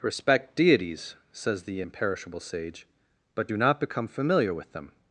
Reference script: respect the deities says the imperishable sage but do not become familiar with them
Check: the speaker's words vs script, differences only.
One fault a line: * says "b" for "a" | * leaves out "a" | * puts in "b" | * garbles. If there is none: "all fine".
* leaves out "the"